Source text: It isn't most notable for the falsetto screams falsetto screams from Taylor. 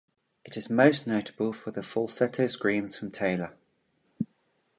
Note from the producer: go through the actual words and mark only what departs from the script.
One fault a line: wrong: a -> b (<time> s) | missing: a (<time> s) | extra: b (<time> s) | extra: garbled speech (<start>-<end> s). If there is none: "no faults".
wrong: isn't -> is (0.6 s)
missing: falsetto screams (2.9 s)